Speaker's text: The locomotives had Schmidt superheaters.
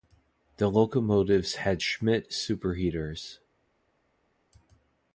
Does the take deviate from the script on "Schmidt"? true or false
false